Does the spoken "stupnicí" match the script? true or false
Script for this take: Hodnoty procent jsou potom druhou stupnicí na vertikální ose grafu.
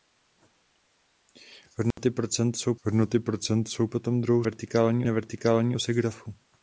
false